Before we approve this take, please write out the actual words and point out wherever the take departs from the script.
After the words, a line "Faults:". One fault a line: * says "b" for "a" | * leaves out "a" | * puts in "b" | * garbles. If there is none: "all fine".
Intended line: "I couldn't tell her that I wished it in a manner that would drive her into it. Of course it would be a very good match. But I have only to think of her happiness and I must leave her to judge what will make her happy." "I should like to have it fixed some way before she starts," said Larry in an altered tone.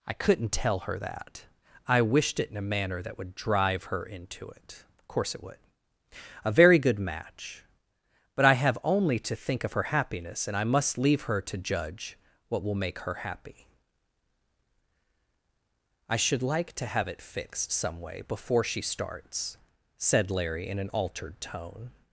"I couldn't tell her that I wished it in a manner that would drive her into it. Of course it would a very good match. But I have only to think of her happiness and I must leave her to judge what will make her happy." "I should like to have it fixed some way before she starts," said Larry in an altered tone.
Faults:
* leaves out "be"